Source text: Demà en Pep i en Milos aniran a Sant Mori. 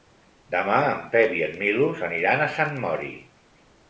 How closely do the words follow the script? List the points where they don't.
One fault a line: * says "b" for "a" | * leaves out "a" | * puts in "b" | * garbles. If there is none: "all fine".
all fine